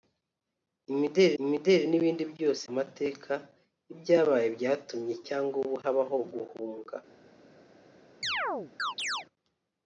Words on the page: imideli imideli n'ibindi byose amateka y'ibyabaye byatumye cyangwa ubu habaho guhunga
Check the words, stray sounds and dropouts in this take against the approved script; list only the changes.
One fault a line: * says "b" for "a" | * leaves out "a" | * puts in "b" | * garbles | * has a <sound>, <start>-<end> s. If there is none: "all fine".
* has a chirp, 8.2-9.3 s